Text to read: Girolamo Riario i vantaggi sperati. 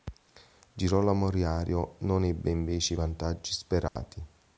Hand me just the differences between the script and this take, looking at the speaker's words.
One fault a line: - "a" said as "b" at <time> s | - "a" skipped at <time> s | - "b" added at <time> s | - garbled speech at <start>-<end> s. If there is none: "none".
- "non ebbe invece" added at 2.0 s